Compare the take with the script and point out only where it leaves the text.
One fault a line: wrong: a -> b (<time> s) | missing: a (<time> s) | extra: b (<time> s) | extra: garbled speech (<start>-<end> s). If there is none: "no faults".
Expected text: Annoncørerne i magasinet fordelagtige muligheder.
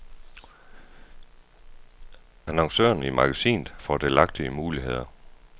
no faults